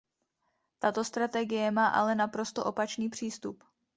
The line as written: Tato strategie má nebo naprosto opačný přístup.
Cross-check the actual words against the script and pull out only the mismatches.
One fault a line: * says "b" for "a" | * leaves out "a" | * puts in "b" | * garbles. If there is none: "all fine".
* says "ale" for "nebo"